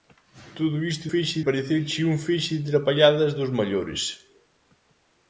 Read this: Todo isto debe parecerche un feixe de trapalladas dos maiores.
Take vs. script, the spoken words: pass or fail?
fail